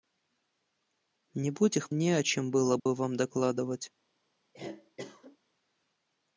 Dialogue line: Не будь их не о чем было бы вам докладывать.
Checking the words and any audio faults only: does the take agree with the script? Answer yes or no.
no